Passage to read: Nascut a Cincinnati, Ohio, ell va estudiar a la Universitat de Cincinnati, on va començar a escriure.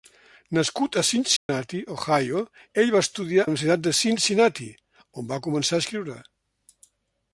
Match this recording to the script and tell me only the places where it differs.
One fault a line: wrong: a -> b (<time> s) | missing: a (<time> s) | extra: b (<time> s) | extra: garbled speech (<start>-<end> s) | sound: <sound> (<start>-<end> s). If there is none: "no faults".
sound: dropout (1.4-1.5 s)
missing: a (3.5 s)